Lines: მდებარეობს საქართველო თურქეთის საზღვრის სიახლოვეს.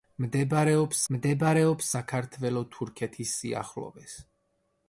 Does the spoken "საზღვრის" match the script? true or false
false